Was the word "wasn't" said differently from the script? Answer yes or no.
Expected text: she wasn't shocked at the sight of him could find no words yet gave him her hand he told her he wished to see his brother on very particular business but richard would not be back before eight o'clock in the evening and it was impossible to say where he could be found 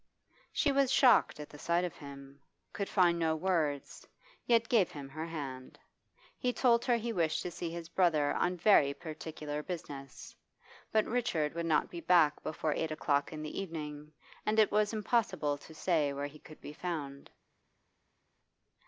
yes